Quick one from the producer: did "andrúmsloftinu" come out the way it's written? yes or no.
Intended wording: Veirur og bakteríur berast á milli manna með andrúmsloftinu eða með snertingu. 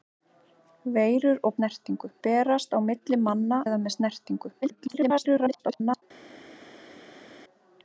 no